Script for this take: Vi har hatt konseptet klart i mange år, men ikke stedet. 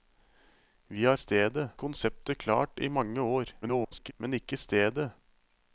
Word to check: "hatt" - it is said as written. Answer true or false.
false